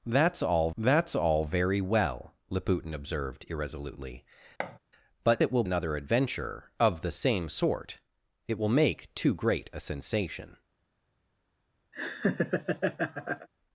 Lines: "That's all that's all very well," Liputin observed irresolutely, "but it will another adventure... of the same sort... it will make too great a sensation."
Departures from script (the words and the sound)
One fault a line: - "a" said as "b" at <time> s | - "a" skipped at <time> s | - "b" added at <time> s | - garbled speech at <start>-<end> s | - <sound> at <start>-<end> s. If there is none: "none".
- thud at 4.6-4.8 s
- laugh at 11.9-13.5 s